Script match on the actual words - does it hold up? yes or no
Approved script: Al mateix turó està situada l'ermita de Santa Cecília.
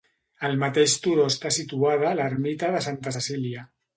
yes